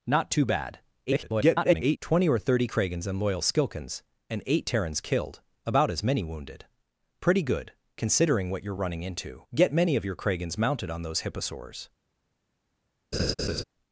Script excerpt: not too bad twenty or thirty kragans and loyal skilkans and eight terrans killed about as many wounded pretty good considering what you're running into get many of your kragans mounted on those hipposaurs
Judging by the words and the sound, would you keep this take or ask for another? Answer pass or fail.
fail